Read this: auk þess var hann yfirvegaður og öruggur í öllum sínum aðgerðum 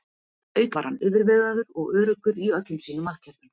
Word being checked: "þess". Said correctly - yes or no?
no